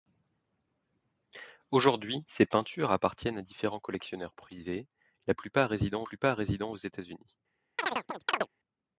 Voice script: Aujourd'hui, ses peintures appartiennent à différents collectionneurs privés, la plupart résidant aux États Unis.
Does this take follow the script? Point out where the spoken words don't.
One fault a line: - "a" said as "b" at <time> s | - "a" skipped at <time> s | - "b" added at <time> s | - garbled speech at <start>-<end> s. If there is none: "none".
- "plupart résidant" added at 6.0 s